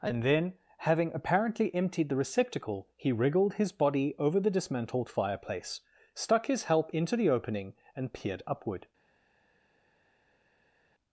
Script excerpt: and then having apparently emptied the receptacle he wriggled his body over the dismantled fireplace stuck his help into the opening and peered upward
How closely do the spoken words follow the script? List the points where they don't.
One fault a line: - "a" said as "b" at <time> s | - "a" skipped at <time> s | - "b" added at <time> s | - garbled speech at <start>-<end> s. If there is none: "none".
none